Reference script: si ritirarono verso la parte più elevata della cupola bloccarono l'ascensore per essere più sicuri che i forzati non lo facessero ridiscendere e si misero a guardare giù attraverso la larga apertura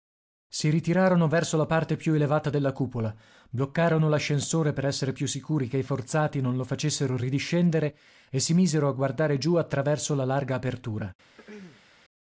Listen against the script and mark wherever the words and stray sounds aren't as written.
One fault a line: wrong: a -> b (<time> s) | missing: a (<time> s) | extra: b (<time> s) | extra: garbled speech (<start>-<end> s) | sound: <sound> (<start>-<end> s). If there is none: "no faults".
sound: throat clearing (11.4-11.9 s)